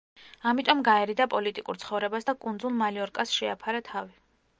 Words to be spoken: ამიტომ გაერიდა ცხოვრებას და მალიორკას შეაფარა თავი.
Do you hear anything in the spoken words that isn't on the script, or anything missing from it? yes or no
yes